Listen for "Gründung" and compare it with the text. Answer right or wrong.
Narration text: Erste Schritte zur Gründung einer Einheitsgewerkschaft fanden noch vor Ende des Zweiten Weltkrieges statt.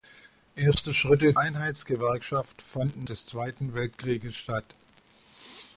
wrong